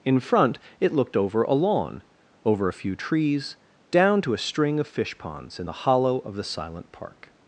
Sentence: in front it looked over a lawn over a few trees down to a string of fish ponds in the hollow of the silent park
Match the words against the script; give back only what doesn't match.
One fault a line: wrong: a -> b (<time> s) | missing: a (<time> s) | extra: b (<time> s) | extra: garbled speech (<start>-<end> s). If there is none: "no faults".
no faults